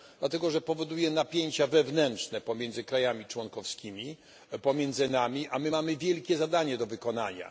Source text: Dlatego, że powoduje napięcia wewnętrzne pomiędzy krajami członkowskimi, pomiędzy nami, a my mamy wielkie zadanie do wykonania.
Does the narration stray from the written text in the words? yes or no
no